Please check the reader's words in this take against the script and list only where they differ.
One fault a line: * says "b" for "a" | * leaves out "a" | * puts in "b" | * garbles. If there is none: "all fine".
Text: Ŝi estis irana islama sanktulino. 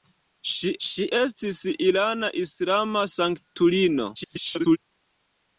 * puts in "ŝi"
* garbles